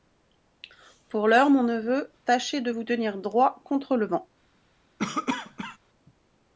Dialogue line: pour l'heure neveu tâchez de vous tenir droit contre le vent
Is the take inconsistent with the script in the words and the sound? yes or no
yes